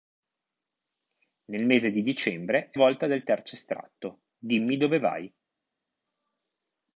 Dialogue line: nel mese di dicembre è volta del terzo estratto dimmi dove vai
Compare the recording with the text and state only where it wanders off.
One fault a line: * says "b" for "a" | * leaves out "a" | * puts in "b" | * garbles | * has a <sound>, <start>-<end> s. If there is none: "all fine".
all fine